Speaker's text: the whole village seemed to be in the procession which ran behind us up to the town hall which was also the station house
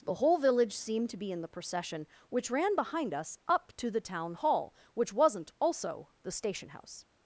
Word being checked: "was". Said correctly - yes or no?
no